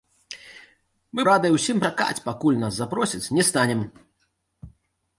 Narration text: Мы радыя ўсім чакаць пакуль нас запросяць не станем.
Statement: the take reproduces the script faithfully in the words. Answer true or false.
true